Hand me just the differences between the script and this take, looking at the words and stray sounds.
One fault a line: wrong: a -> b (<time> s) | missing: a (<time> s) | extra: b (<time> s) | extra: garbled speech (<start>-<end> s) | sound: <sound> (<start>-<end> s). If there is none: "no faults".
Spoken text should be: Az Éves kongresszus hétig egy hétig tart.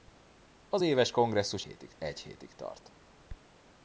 no faults